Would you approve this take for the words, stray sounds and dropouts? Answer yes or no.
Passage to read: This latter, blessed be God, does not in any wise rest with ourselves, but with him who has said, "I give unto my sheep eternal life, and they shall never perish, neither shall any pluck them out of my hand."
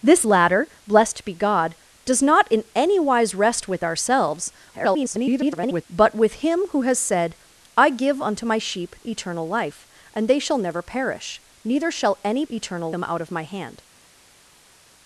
no